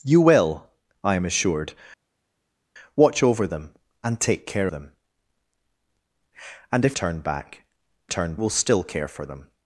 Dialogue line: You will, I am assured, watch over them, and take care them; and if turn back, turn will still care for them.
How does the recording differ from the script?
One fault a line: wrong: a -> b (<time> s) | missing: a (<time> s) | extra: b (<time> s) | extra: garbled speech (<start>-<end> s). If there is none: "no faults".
no faults